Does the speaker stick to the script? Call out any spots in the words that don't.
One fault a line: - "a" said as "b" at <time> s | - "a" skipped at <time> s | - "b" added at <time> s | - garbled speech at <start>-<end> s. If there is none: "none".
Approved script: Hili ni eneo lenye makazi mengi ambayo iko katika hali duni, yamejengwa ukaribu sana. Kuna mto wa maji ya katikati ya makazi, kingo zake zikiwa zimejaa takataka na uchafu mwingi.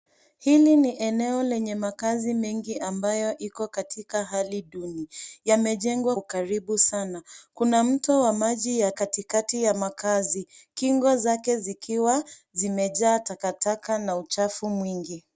none